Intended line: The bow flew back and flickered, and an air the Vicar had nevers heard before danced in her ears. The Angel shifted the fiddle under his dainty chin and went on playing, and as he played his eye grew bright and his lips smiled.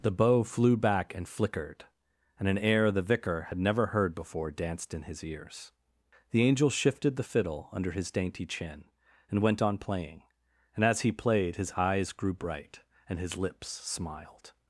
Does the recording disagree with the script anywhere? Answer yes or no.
yes